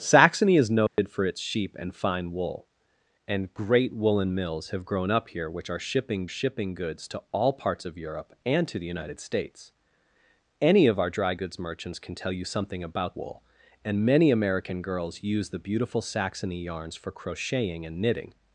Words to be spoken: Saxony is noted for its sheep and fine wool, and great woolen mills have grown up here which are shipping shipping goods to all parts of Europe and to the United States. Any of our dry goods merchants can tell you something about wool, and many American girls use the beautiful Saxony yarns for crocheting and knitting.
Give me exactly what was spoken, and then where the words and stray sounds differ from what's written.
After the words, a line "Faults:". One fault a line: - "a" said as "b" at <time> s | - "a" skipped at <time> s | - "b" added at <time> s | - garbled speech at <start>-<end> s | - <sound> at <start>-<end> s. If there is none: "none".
Saxony is noted for its sheep and fine wool, and great woolen mills have grown up here which are shipping shipping goods to all parts of Europe and to the United States. Any of our dry goods merchants can tell you something about wool, and many American girls use the beautiful Saxony yarns for crocheting and knitting.
Faults:
- dropout at 0.9-1.0 s